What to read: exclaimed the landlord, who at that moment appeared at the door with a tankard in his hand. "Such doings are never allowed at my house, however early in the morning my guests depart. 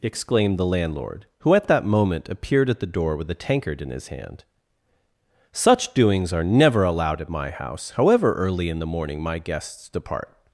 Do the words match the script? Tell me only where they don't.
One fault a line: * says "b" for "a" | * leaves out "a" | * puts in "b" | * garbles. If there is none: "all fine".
all fine